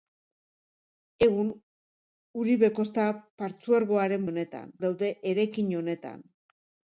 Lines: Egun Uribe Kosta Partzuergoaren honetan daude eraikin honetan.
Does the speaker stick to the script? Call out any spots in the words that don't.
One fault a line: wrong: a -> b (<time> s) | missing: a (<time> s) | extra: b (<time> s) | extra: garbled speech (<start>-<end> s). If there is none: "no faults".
no faults